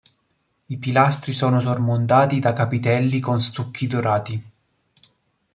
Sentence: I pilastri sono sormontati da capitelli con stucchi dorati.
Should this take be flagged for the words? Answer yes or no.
no